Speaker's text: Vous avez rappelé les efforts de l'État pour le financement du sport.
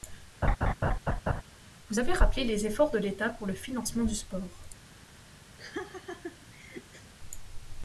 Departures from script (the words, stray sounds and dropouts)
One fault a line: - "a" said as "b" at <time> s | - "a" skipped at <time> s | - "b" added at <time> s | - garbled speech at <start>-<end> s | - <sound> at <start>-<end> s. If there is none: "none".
- laugh at 0.4-1.4 s
- laugh at 5.6-7.1 s